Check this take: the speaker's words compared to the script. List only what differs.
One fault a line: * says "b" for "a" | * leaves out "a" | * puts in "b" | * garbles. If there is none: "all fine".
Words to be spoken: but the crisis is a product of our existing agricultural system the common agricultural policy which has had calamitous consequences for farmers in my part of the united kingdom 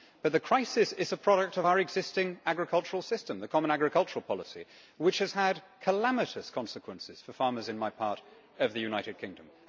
all fine